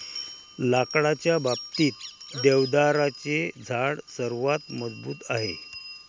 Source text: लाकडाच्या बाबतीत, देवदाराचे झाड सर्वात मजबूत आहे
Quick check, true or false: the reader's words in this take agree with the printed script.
true